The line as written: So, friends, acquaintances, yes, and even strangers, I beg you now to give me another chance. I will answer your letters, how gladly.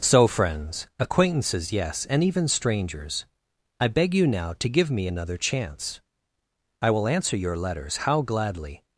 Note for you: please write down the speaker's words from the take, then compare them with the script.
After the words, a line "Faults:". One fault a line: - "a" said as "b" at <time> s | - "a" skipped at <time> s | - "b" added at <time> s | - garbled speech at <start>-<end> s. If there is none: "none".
So, friends, acquaintances, yes, and even strangers, I beg you now to give me another chance. I will answer your letters, how gladly.
Faults:
none